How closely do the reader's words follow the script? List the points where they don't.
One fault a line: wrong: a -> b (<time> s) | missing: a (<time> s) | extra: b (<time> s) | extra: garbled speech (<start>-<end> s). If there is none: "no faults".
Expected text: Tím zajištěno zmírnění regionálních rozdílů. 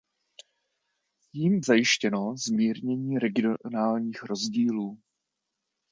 no faults